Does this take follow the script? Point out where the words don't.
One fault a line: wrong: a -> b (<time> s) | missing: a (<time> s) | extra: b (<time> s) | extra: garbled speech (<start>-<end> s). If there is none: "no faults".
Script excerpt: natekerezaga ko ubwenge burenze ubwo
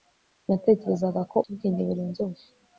no faults